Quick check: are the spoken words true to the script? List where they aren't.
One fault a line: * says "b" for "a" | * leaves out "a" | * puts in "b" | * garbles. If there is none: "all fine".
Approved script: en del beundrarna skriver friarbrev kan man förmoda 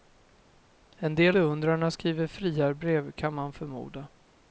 all fine